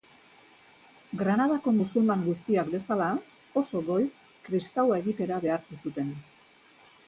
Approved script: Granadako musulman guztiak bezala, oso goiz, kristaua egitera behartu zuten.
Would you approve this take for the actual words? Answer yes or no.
yes